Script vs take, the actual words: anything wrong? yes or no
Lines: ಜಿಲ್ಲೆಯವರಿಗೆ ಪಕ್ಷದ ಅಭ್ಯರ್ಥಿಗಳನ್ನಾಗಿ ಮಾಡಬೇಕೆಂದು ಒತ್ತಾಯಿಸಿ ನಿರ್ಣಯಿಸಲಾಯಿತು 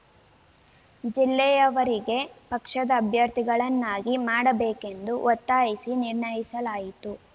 no